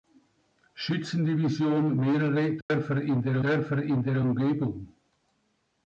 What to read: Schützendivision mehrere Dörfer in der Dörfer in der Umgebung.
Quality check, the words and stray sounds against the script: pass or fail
fail